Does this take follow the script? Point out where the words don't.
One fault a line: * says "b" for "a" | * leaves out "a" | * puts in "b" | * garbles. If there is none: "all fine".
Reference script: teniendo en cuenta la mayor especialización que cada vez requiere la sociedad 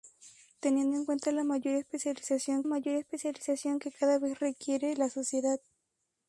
* puts in "mayor especialización"